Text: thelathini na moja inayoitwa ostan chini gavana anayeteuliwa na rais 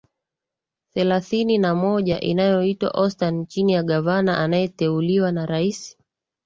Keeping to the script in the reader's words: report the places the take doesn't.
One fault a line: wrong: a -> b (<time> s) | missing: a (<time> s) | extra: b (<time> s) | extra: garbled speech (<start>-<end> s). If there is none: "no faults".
extra: ya (3.7 s)